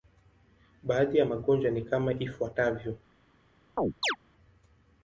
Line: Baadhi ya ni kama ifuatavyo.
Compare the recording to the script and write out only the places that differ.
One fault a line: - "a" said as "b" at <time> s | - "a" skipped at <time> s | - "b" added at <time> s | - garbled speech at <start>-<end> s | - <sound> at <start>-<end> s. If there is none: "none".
- "magonjwa" added at 1.2 s
- chirp at 3.8-4.2 s